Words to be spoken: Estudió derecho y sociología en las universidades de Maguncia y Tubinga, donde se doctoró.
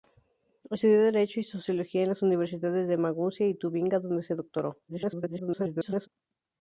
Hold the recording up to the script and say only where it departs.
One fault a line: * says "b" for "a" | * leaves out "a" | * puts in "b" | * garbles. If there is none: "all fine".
* garbles